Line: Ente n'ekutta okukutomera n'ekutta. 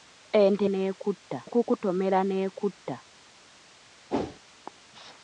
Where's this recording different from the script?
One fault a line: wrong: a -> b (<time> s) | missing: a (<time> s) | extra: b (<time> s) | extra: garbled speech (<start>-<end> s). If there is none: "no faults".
no faults